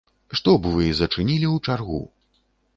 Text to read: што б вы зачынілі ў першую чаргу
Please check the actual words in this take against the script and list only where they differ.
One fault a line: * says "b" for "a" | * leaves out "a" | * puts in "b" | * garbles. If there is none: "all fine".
* leaves out "першую"